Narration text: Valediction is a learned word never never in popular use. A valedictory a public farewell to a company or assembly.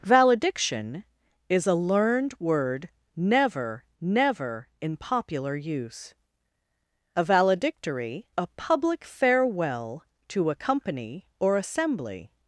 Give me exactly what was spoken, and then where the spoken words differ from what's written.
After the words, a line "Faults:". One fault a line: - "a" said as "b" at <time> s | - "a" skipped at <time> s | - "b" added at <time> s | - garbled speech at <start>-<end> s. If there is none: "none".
Valediction is a learned word never never in popular use. A valedictory a public farewell to a company or assembly.
Faults:
none